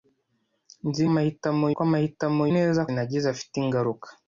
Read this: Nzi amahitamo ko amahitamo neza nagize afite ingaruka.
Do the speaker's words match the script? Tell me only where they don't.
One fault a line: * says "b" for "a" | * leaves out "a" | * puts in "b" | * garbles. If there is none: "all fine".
all fine